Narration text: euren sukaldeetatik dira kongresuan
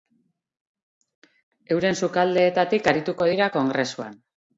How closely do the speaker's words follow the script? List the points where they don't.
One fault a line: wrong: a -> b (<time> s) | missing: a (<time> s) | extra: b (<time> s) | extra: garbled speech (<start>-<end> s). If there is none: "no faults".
extra: arituko (2.9 s)